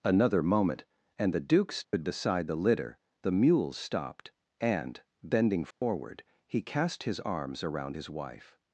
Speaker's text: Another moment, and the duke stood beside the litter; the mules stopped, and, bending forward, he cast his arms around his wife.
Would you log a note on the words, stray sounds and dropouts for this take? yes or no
yes